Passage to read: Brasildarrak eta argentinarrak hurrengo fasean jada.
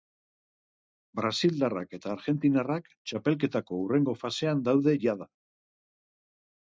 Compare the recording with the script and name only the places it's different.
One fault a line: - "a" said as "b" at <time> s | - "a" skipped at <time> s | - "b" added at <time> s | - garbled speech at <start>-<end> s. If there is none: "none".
- "txapelketako" added at 2.9 s
- "daude" added at 4.7 s